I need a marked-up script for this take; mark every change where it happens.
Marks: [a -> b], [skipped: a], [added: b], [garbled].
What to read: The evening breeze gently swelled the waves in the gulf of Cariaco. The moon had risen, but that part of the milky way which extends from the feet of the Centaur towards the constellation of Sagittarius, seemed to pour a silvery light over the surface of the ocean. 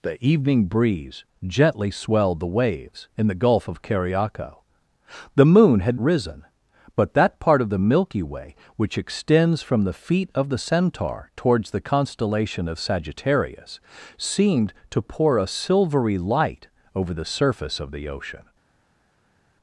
The evening breeze gently swelled the waves in the gulf of Cariaco. The moon had risen, but that part of the milky way which extends from the feet of the Centaur towards the constellation of Sagittarius, seemed to pour a silvery light over the surface of the ocean.